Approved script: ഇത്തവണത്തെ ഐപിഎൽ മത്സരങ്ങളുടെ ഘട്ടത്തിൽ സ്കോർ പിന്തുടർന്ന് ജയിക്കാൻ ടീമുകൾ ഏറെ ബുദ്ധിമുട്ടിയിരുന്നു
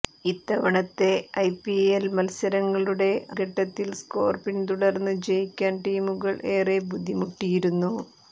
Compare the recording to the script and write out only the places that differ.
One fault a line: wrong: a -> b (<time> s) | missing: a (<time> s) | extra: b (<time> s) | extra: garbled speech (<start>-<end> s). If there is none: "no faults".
no faults